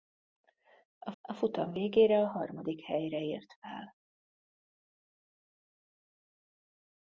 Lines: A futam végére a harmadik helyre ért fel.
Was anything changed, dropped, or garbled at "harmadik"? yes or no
no